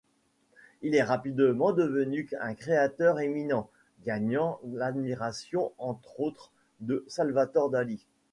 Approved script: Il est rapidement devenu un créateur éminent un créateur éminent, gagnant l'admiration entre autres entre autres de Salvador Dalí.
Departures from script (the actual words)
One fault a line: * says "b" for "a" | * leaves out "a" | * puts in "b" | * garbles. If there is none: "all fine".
* leaves out "un créateur éminent"
* leaves out "entre autres"